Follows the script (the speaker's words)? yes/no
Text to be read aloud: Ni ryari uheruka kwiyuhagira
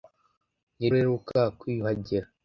no